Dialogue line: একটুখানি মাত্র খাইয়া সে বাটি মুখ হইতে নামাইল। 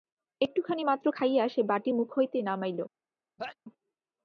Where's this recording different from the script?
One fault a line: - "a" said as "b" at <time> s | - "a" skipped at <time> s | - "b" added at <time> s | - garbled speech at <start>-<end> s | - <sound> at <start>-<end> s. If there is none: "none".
- sneeze at 3.4-3.6 s